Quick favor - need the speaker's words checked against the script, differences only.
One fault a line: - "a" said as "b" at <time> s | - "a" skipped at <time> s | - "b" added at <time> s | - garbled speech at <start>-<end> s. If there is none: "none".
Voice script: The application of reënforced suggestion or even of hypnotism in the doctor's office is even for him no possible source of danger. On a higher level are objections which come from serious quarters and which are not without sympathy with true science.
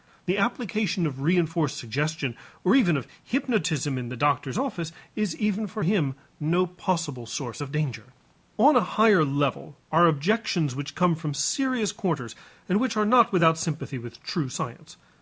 none